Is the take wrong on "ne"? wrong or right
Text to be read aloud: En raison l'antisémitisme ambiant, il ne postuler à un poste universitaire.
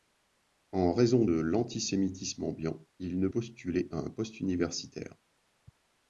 right